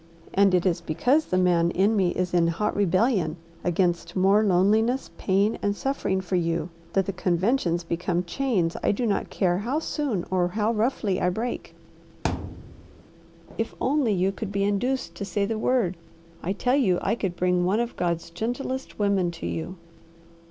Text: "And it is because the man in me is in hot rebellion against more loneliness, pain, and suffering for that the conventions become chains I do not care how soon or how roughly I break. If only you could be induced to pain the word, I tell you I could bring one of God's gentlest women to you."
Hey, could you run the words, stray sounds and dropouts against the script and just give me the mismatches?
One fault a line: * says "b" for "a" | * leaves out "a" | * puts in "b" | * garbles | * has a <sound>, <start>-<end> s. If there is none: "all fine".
* puts in "you"
* has a thud, 12.2-13.0 s
* says "say" for "pain"